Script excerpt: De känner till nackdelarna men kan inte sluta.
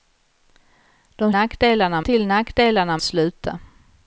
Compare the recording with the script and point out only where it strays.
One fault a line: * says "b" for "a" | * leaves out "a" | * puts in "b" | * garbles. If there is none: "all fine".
* says "nackdelarna" for "känner"
* leaves out "men kan inte"